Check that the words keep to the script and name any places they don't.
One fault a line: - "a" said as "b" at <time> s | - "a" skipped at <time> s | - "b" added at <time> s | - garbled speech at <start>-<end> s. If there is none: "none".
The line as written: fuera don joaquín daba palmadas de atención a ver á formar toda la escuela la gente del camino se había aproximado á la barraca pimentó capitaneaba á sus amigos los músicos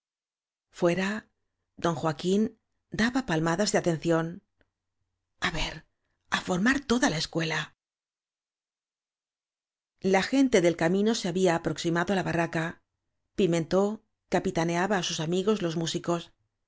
none